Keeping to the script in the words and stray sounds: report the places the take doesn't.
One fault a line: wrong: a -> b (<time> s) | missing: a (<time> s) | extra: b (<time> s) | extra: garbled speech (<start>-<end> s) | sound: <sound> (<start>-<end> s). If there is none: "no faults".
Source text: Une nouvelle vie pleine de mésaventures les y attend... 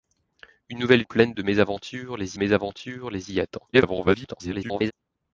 missing: vie (1.0 s)
extra: mésaventures les (2.4 s)
extra: garbled speech (3.7-4.9 s)